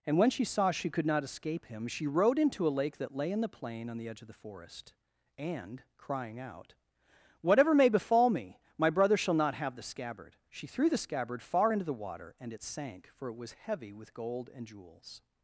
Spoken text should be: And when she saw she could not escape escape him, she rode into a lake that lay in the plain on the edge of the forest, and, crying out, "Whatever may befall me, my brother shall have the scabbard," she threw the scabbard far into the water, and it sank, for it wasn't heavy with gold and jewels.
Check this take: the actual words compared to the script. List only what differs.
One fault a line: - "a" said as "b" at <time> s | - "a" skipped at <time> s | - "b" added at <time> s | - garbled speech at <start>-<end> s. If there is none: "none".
- "escape" skipped at 1.6 s
- "not" added at 9.3 s
- "wasn't" said as "was" at 13.4 s